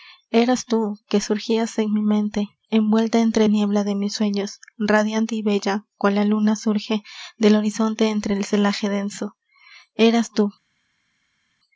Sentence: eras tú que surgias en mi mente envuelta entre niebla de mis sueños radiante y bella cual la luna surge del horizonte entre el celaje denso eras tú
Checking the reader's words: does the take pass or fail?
pass